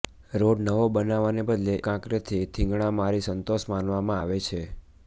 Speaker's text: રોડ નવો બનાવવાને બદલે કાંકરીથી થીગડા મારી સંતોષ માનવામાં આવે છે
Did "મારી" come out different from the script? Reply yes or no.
no